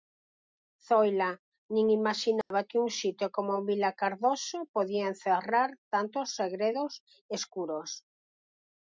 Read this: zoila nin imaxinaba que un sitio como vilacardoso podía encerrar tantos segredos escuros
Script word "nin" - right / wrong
right